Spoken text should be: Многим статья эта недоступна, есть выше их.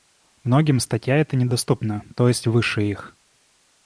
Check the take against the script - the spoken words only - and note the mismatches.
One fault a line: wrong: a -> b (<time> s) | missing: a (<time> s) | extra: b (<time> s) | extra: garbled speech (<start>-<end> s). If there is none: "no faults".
extra: то (2.1 s)